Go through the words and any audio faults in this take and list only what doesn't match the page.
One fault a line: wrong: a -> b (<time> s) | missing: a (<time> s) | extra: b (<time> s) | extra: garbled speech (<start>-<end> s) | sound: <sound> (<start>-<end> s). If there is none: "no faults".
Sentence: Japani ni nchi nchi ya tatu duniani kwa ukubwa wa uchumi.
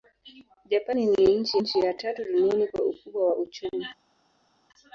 no faults